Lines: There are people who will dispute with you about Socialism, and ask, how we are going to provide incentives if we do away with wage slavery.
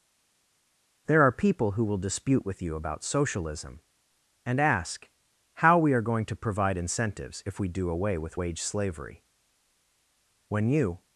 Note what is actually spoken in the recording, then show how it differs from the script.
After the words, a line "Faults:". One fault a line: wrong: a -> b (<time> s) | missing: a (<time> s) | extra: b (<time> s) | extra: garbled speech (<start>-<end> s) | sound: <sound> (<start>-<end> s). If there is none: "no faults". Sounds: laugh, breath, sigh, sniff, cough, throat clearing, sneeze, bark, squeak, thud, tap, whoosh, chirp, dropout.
There are people who will dispute with you about Socialism, and ask, how we are going to provide incentives if we do away with wage slavery. When you
Faults:
extra: When you (10.5 s)